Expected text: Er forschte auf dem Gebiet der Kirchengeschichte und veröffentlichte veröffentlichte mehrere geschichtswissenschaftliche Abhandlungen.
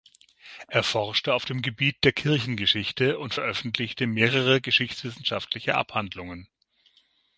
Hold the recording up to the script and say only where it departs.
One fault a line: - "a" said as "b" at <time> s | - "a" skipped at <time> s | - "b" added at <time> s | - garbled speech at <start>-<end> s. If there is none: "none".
- "veröffentlichte" skipped at 4.1 s